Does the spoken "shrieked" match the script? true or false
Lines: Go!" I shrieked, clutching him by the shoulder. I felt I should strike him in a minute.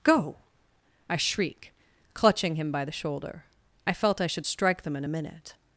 false